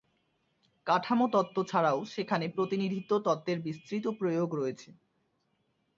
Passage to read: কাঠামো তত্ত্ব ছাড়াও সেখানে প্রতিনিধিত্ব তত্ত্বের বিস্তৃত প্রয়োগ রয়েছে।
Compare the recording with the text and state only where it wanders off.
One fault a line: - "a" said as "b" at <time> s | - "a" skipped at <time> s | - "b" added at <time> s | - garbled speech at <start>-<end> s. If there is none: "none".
none